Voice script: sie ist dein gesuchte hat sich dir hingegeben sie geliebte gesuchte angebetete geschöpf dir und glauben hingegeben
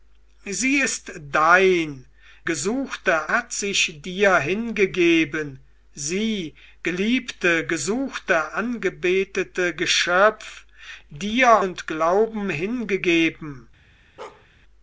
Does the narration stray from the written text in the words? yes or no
no